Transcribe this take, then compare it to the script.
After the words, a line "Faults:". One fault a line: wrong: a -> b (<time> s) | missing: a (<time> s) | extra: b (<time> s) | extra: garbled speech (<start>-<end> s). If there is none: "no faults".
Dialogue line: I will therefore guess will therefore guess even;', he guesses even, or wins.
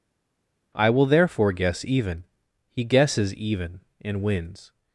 I will therefore guess even;', he guesses even, and wins.
Faults:
missing: will therefore guess (1.9 s)
wrong: or -> and (4.0 s)